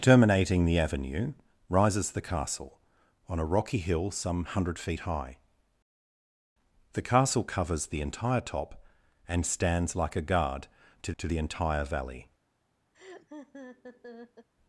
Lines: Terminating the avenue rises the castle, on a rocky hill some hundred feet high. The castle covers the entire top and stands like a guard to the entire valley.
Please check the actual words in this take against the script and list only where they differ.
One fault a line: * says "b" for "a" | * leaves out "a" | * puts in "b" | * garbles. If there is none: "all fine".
* puts in "to"